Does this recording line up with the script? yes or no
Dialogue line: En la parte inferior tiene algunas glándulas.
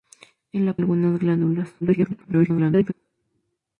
no